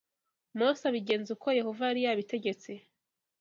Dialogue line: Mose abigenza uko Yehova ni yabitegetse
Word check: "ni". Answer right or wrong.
wrong